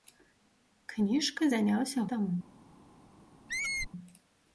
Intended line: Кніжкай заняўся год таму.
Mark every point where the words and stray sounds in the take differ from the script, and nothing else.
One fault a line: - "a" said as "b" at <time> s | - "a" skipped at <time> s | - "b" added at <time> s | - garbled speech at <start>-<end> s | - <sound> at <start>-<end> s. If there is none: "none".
- "год" skipped at 2.1 s
- squeak at 3.5-3.9 s